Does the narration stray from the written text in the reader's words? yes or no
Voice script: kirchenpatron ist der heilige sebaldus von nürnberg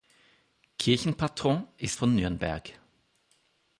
yes